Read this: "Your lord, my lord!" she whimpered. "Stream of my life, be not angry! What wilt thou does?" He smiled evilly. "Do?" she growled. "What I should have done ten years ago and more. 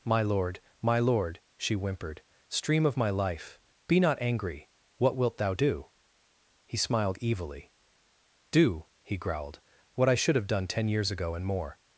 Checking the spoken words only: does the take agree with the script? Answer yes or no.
no